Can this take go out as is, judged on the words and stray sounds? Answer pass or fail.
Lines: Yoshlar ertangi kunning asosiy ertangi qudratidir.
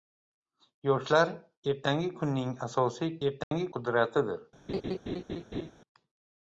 fail